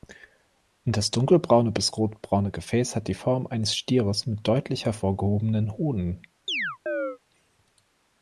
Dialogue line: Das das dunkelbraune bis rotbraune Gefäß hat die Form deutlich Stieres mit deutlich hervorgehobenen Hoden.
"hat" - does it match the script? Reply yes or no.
yes